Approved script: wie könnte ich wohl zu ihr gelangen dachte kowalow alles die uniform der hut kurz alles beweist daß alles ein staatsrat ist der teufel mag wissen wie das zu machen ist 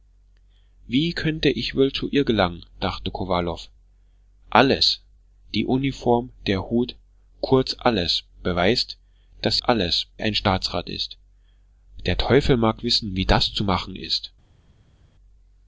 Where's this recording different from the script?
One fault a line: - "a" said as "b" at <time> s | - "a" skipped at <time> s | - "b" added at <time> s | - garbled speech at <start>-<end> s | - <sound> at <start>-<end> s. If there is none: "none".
none